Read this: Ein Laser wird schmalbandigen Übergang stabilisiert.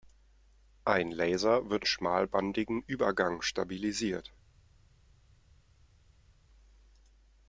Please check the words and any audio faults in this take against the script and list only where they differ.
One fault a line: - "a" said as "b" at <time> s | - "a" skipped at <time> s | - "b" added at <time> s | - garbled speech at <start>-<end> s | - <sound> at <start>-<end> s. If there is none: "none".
none